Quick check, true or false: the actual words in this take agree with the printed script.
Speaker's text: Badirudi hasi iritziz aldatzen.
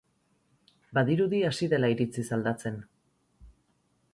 false